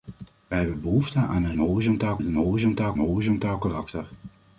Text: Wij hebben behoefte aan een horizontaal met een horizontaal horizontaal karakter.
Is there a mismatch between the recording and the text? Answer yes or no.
no